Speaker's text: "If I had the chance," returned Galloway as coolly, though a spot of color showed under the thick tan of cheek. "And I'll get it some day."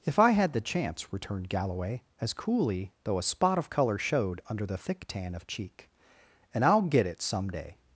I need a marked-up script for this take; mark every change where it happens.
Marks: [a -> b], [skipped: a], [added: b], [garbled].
"If I had the chance," returned Galloway as coolly, though a spot of color showed under the thick tan of cheek. "And I'll get it some day."